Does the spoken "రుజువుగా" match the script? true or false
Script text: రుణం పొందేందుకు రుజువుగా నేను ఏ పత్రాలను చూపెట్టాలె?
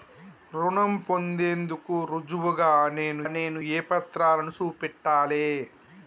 true